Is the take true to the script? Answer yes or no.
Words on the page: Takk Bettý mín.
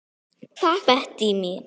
yes